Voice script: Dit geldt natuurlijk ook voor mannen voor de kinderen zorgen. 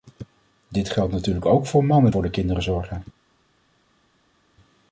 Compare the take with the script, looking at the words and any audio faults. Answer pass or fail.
pass